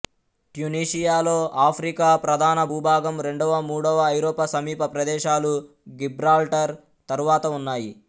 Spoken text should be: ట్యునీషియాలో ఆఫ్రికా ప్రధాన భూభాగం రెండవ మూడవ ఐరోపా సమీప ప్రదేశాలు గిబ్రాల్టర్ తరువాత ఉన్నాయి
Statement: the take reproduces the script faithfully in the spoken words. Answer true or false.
true